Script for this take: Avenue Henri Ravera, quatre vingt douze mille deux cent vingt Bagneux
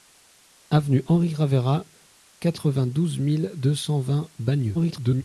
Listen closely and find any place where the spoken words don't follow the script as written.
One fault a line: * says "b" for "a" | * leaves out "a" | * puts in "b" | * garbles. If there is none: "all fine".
* garbles